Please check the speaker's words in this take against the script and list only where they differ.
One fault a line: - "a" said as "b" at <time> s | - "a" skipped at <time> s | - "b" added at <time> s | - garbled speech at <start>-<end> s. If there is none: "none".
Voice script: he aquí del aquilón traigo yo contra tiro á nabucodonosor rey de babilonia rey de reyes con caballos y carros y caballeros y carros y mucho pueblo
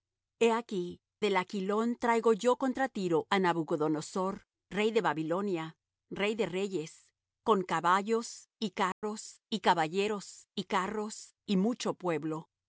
none